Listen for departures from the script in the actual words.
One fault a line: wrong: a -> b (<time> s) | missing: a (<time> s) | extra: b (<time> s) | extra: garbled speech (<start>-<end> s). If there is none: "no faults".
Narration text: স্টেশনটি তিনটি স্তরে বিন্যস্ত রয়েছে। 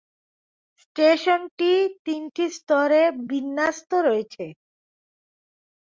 no faults